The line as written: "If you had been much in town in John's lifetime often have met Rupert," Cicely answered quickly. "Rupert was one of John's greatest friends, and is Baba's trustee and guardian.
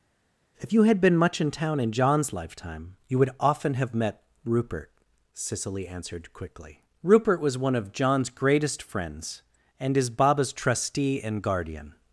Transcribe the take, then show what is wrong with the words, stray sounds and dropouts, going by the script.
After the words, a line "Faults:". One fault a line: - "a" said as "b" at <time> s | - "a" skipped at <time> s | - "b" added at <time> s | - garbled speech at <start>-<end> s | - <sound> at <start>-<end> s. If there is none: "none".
"If you had been much in town in John's lifetime you would often have met Rupert," Cicely answered quickly. "Rupert was one of John's greatest friends, and is Baba's trustee and guardian.
Faults:
- "you would" added at 3.1 s